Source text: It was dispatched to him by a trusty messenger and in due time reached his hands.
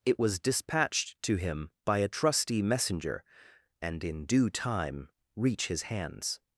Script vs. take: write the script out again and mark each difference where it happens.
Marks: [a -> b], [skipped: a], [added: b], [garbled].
It was dispatched to him by a trusty messenger and in due time [reached -> reach] his hands.